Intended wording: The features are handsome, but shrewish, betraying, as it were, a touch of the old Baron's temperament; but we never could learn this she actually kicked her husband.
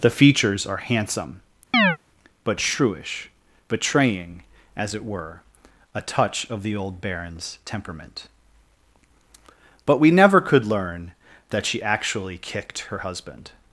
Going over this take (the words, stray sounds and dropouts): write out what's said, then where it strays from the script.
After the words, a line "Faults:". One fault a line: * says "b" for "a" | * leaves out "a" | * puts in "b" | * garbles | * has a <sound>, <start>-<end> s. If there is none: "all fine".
The features are handsome, but shrewish, betraying, as it were, a touch of the old Baron's temperament; but we never could learn that she actually kicked her husband.
Faults:
* has a chirp, 1.7-2.0 s
* says "that" for "this"